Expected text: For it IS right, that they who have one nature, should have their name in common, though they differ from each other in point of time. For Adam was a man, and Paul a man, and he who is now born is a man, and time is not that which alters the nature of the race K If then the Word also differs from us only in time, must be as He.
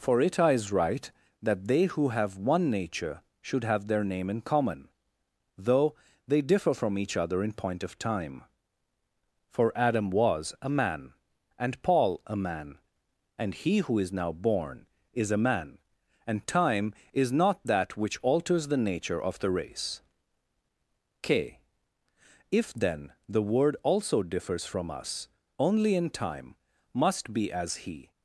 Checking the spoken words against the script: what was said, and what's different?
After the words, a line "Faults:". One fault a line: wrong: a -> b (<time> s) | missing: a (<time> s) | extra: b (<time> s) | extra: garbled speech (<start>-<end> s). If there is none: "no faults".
For it IS right, that they who have one nature, should have their name in common, though they differ from each other in point of time. For Adam was a man, and Paul a man, and he who is now born is a man, and time is not that which alters the nature of the race K If then the Word also differs from us only in time, must be as He.
Faults:
no faults